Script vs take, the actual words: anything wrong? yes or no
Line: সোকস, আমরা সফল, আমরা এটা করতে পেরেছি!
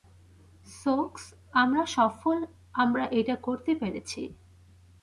no